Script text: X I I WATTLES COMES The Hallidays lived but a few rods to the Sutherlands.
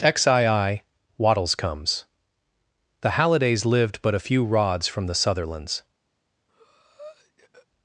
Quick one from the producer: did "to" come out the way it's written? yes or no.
no